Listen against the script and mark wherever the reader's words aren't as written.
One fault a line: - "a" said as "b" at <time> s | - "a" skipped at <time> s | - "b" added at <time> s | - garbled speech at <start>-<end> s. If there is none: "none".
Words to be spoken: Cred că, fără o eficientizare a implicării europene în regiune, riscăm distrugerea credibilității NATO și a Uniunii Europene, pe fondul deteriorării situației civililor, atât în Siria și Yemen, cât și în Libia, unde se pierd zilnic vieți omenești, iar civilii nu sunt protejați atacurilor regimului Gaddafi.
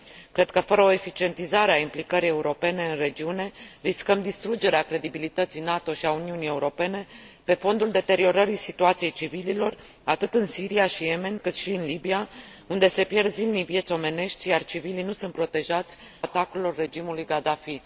none